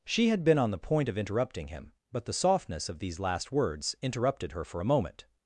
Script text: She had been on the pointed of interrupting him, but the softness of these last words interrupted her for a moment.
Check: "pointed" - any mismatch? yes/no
yes